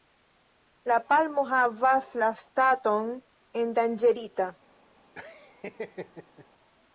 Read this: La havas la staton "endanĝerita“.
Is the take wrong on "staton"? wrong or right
right